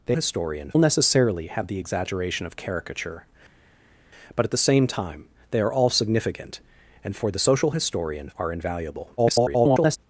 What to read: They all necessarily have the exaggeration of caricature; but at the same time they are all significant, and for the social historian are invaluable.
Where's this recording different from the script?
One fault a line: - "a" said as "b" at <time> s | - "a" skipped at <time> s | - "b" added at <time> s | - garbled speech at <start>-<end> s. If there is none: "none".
- "all" said as "historian" at 0.1 s
- garbled speech at 9.2-10.0 s